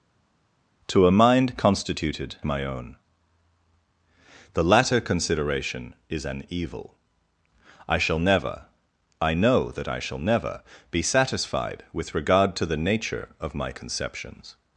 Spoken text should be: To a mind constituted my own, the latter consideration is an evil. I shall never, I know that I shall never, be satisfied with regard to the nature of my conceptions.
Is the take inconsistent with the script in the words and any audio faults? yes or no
no